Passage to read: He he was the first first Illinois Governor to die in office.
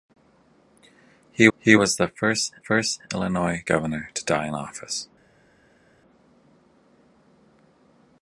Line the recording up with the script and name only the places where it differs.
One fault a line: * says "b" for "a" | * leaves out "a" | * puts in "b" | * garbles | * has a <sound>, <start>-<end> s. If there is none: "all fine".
all fine